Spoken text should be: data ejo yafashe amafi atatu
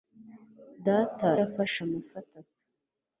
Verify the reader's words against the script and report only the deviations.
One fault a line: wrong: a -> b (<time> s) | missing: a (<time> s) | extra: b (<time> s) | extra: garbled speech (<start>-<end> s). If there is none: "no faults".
missing: ejo (1.3 s)